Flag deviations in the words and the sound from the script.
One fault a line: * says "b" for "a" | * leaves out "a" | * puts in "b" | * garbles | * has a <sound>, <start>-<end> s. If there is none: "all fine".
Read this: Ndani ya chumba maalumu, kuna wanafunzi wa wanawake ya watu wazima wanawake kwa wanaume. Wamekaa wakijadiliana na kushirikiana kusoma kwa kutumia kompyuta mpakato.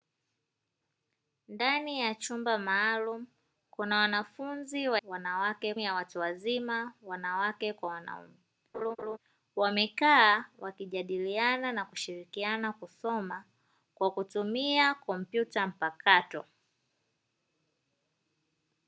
* has a laugh, 8.7-9.2 s